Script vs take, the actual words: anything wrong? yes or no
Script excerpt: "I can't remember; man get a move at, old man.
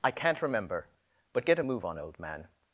yes